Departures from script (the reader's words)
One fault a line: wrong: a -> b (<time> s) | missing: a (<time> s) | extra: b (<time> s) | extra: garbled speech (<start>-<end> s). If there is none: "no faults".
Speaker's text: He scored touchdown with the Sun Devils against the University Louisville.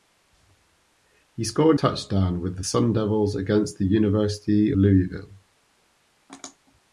no faults